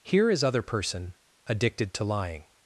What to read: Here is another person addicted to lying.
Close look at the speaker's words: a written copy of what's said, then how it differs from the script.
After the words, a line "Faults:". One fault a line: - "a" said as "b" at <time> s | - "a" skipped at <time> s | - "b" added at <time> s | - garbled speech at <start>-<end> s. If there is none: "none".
Here is other person addicted to lying.
Faults:
- "another" said as "other" at 0.4 s